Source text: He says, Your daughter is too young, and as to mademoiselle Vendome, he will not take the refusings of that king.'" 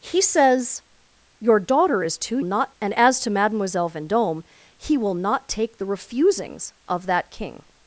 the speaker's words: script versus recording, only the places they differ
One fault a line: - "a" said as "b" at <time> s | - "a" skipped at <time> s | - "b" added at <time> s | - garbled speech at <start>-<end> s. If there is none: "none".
- "young" said as "not" at 2.4 s